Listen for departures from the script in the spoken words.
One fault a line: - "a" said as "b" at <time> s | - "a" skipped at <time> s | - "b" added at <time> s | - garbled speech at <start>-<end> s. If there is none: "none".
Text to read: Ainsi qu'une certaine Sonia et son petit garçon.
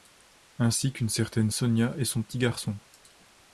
none